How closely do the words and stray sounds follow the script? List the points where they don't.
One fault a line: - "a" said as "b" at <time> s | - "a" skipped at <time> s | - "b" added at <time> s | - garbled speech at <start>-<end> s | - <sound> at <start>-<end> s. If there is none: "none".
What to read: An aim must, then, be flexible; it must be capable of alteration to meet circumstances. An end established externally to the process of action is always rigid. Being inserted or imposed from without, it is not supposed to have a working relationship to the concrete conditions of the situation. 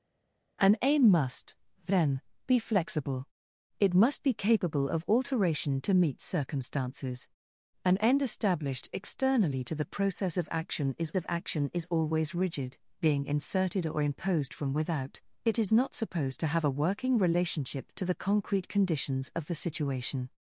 - "of action is" added at 11.1 s